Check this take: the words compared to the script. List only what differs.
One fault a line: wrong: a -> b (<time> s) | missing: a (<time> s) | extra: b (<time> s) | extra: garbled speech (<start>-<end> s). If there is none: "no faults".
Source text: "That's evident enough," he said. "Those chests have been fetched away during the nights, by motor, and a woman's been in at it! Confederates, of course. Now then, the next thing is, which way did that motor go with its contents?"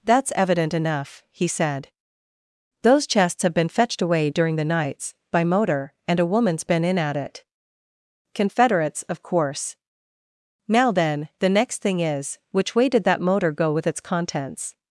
no faults